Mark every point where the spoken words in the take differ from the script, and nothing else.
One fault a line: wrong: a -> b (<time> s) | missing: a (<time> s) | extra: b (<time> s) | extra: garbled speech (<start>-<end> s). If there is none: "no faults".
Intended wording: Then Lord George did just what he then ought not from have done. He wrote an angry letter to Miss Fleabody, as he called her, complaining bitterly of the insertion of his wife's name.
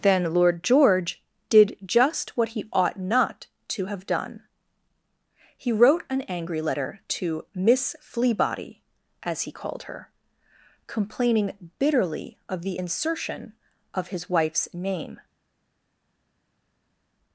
missing: then (2.6 s)
wrong: from -> to (3.7 s)